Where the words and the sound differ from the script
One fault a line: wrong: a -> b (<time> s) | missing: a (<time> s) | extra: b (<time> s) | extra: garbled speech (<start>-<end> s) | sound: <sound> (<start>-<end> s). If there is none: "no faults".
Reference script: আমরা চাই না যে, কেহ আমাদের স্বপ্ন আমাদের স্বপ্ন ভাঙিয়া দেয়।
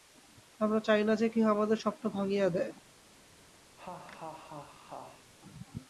missing: আমাদের স্বপ্ন (2.0 s)
sound: laugh (3.8-5.3 s)